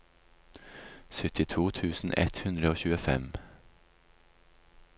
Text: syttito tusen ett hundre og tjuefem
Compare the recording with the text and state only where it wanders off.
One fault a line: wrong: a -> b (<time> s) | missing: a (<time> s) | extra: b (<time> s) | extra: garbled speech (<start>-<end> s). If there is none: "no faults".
no faults